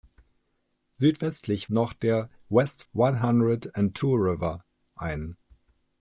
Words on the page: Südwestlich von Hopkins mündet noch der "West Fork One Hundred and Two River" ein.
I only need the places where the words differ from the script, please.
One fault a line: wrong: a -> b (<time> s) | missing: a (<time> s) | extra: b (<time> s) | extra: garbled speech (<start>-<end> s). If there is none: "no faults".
missing: von Hopkins mündet (1.7 s)
missing: Fork (2.8 s)